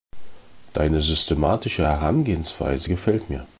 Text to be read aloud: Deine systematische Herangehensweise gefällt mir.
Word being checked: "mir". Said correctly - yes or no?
yes